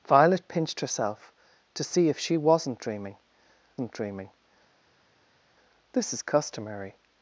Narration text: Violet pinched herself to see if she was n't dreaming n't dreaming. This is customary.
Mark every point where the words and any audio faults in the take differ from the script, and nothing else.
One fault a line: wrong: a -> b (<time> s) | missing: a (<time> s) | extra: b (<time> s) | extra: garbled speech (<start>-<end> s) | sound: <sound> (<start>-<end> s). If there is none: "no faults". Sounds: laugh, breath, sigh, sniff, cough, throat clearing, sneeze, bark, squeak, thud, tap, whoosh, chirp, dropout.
no faults